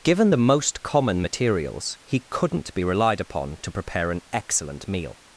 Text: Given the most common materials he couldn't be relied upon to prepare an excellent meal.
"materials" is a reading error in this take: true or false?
false